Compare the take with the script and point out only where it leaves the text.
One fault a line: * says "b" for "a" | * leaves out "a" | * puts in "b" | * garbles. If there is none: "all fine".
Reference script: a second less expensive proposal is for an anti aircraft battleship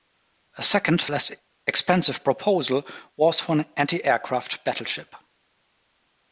* says "was" for "is"